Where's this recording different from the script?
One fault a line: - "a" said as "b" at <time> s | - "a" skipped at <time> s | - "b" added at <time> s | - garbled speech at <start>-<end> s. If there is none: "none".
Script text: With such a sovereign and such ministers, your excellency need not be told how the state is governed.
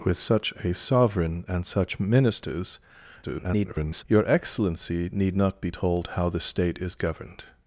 - garbled speech at 3.2-4.0 s